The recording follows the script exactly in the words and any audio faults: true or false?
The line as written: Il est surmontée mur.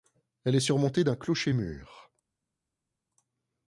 false